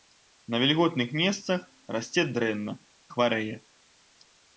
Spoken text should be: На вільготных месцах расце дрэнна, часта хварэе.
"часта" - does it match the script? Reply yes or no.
no